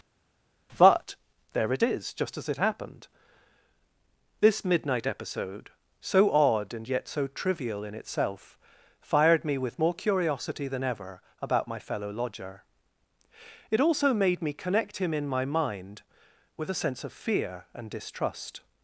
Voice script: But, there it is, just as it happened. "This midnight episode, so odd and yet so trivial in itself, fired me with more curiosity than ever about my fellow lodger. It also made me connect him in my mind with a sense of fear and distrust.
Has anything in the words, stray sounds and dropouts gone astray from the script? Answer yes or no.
no